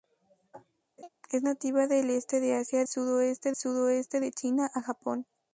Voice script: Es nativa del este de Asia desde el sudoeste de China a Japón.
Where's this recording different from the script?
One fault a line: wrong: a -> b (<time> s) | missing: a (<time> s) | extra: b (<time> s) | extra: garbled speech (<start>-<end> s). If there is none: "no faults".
wrong: desde -> sudoeste (2.9 s)